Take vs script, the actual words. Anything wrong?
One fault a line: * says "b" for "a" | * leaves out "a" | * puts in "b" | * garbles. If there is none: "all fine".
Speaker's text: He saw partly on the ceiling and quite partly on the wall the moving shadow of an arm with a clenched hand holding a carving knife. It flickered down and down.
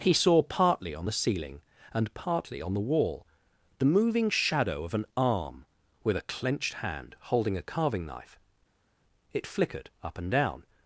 * leaves out "quite"
* says "up" for "down"